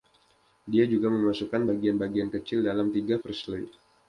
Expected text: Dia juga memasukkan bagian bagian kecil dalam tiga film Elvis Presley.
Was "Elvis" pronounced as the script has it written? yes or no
no